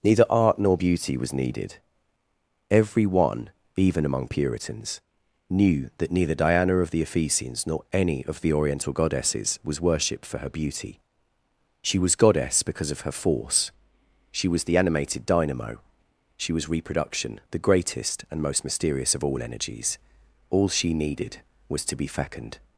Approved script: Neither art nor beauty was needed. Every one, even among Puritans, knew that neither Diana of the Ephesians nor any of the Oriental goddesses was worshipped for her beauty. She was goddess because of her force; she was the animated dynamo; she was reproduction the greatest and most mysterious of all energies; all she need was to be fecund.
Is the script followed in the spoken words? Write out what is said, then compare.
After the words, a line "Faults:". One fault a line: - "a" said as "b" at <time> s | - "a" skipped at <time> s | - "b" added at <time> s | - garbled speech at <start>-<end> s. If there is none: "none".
Neither art nor beauty was needed. Every one, even among Puritans, knew that neither Diana of the Ephesians nor any of the Oriental goddesses was worshipped for her beauty. She was goddess because of her force; she was the animated dynamo; she was reproduction the greatest and most mysterious of all energies; all she needed was to be fecund.
Faults:
- "need" said as "needed" at 20.9 s